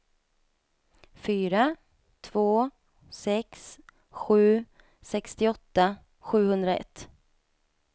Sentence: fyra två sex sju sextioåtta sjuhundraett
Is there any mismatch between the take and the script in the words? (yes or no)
no